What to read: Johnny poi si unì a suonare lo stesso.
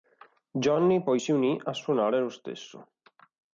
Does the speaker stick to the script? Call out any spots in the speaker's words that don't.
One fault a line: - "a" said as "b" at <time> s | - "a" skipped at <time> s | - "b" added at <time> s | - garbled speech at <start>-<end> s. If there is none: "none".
none